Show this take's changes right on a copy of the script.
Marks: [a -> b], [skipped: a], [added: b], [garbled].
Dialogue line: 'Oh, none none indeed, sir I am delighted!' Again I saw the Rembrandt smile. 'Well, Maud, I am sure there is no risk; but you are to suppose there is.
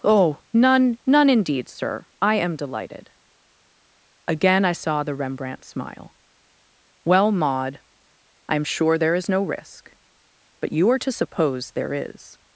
'Oh, none none indeed, sir I am delighted!' Again I saw the Rembrandt smile. 'Well, Maud, I am sure there is no risk; but you are to suppose there is.